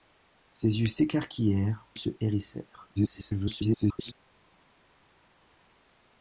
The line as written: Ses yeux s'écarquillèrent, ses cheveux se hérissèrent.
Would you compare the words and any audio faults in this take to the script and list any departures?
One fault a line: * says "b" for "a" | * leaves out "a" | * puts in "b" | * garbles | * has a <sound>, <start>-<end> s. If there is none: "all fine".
* leaves out "ses cheveux"
* garbles